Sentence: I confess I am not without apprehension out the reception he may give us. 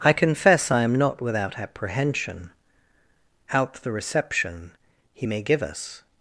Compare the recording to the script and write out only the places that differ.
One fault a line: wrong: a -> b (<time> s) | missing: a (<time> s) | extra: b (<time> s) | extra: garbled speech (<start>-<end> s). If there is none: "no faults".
no faults